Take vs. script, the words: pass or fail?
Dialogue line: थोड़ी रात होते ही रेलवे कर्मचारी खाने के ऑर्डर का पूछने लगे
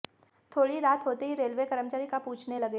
fail